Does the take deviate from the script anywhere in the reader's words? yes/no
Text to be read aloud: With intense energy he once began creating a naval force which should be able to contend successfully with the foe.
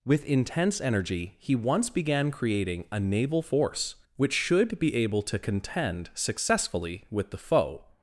no